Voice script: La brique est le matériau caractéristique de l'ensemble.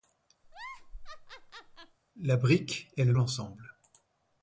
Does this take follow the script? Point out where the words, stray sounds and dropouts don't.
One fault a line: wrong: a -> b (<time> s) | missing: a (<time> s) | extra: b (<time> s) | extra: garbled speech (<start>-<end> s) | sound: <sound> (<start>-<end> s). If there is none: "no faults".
sound: laugh (0.4-2.0 s)
missing: matériau caractéristique de (3.1 s)